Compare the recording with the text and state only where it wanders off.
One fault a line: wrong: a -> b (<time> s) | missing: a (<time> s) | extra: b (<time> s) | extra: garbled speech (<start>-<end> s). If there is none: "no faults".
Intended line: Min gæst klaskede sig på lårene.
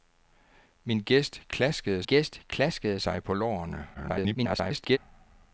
extra: gæst klaskede (2.0 s)
extra: garbled speech (3.9-5.0 s)